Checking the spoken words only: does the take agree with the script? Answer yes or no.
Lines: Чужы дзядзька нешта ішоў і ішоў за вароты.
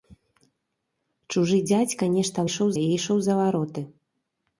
yes